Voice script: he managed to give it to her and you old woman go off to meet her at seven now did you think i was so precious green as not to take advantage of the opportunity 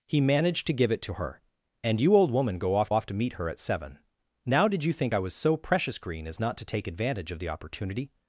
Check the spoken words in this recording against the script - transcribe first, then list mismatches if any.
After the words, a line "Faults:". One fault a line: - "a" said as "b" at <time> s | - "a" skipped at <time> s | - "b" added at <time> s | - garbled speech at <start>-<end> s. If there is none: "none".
he managed to give it to her and you old woman go off off to meet her at seven now did you think i was so precious green as not to take advantage of the opportunity
Faults:
- "off" added at 2.9 s